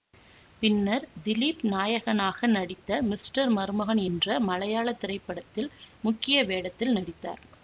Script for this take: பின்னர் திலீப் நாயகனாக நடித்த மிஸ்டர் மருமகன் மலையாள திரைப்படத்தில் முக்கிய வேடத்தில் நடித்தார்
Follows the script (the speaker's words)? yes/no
no